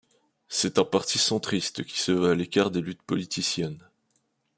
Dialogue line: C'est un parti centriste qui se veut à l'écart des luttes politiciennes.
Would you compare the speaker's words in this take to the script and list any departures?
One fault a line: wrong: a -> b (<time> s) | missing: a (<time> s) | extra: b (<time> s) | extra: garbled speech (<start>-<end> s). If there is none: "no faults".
no faults